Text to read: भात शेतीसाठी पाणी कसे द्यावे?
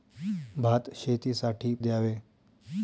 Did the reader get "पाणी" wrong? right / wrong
wrong